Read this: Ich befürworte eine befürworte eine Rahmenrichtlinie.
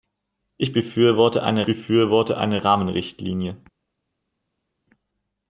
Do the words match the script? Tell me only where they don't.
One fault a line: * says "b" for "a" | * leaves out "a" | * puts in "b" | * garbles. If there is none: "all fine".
all fine